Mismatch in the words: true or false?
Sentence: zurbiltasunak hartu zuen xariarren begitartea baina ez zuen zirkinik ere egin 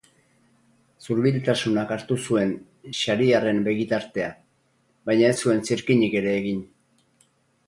false